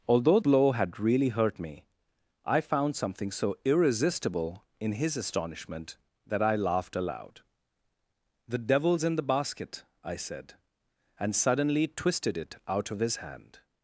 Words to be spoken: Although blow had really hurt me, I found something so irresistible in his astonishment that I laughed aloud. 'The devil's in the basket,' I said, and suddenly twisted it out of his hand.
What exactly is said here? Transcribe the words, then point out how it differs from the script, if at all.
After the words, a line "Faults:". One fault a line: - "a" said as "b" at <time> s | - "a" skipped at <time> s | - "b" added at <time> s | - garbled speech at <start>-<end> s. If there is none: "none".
Although blow had really hurt me, I found something so irresistible in his astonishment that I laughed aloud. 'The devil's in the basket,' I said, and suddenly twisted it out of his hand.
Faults:
none